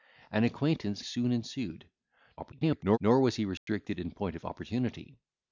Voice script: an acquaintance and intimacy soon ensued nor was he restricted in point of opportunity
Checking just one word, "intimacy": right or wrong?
wrong